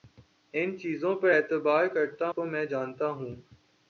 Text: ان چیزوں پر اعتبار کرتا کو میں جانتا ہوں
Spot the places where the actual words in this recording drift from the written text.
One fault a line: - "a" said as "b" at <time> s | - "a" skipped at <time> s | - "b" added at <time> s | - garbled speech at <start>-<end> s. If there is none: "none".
none